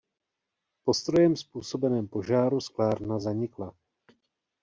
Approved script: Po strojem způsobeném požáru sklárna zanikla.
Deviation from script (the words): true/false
false